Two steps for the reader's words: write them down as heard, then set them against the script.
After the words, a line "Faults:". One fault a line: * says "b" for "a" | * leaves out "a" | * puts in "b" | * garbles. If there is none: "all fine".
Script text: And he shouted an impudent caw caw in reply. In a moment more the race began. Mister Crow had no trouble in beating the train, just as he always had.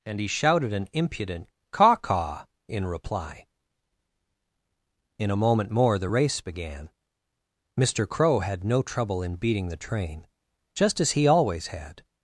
And he shouted an impudent caw caw in reply. In a moment more the race began. Mister Crow had no trouble in beating the train, just as he always had.
Faults:
all fine